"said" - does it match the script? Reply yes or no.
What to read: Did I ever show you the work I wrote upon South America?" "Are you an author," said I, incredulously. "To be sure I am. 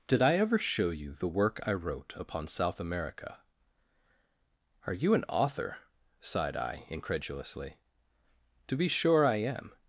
no